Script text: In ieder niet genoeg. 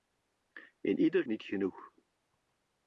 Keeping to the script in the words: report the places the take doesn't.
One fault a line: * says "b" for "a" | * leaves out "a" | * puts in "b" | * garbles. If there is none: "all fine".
all fine